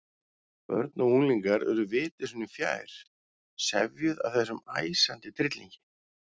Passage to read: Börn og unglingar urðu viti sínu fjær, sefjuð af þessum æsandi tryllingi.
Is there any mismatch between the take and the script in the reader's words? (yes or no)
no